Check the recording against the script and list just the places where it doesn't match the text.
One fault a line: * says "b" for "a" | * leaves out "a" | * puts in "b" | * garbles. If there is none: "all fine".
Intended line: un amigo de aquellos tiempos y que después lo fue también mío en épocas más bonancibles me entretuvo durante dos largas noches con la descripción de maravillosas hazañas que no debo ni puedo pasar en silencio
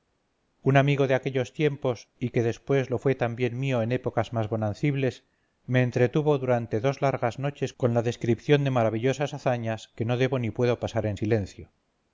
all fine